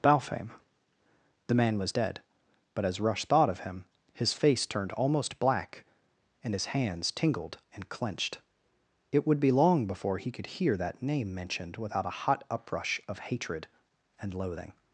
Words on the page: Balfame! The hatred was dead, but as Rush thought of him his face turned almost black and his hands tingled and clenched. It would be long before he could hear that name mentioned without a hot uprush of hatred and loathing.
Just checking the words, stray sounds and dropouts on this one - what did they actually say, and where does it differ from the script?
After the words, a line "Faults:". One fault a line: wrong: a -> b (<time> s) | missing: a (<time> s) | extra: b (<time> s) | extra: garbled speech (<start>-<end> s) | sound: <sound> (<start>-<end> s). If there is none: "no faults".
Balfame! The man was dead, but as Rush thought of him his face turned almost black and his hands tingled and clenched. It would be long before he could hear that name mentioned without a hot uprush of hatred and loathing.
Faults:
wrong: hatred -> man (1.5 s)